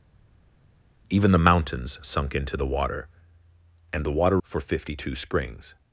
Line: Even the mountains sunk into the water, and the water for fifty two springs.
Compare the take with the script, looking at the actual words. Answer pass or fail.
pass